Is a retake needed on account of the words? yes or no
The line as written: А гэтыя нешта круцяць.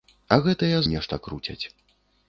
no